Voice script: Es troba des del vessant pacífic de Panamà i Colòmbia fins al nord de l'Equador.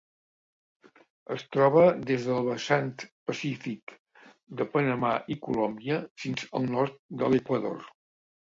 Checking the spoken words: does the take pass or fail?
pass